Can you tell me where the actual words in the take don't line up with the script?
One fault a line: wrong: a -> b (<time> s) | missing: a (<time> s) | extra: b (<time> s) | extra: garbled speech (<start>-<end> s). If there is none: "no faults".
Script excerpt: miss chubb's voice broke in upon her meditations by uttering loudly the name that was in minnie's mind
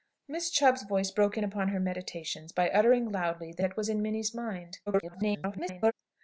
missing: name (3.6 s)
extra: garbled speech (4.9-5.9 s)